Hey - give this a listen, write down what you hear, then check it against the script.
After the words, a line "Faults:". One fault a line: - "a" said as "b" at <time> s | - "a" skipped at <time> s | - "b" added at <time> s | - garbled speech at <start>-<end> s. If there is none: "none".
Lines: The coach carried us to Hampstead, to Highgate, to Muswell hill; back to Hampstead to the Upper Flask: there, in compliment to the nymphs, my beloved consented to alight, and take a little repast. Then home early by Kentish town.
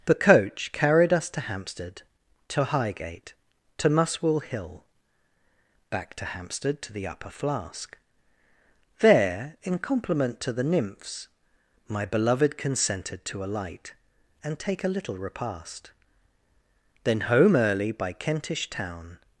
The coach carried us to Hampstead, to Highgate, to Muswell hill; back to Hampstead to the Upper Flask: there, in compliment to the nymphs, my beloved consented to alight, and take a little repast. Then home early by Kentish town.
Faults:
none